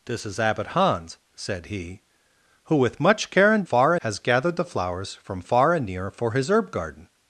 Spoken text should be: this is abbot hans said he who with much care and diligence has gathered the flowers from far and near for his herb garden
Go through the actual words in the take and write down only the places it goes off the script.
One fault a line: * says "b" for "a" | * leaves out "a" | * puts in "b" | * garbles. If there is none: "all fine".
* says "far" for "diligence"